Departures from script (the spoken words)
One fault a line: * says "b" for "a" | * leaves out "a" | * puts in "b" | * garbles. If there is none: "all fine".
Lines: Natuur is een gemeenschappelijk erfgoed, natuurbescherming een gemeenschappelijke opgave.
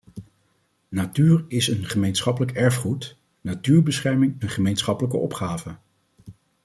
all fine